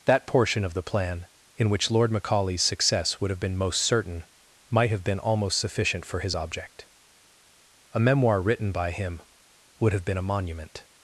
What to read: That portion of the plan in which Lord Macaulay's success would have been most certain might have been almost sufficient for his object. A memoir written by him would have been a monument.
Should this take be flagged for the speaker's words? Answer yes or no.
no